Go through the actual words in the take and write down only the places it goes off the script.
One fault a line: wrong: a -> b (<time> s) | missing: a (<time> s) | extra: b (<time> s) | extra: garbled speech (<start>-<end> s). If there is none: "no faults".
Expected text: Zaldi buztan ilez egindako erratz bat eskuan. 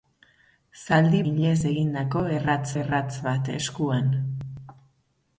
missing: buztan (1.2 s)
extra: erratz (2.8 s)